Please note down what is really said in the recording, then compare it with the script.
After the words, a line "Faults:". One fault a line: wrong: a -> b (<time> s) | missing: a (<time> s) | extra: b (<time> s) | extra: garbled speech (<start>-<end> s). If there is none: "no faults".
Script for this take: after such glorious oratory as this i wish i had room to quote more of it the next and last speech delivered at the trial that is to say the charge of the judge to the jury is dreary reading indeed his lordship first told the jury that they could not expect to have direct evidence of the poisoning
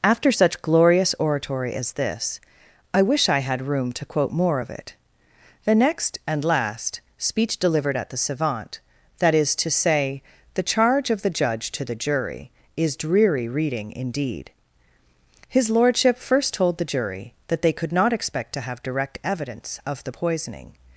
after such glorious oratory as this i wish i had room to quote more of it the next and last speech delivered at the savant that is to say the charge of the judge to the jury is dreary reading indeed his lordship first told the jury that they could not expect to have direct evidence of the poisoning
Faults:
wrong: trial -> savant (8.2 s)